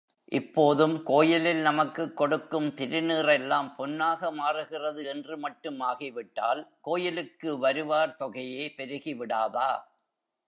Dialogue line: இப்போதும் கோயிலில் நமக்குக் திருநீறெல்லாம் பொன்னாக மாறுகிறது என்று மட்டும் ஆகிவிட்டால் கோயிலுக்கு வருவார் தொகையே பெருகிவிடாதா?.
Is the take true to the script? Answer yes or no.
no